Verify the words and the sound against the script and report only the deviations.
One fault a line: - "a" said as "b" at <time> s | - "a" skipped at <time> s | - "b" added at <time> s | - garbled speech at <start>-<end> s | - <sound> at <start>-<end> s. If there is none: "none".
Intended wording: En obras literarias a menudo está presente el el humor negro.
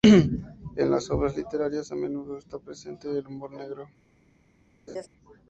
- "las" added at 0.9 s
- "el" skipped at 3.3 s
- laugh at 4.9-5.1 s